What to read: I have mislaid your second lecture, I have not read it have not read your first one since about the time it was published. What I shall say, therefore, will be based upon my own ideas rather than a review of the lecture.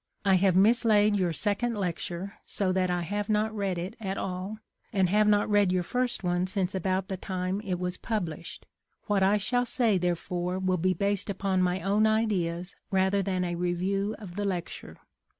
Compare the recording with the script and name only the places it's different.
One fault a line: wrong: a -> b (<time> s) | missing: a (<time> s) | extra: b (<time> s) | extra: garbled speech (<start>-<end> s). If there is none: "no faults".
extra: so that (2.4 s)
extra: at all and (4.0 s)